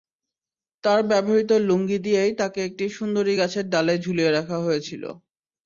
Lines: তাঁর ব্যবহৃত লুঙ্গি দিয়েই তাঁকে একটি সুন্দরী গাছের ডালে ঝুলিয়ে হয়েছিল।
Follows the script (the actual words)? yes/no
no